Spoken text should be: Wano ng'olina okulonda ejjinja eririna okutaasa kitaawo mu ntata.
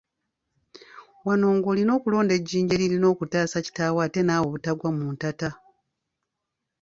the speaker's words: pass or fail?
fail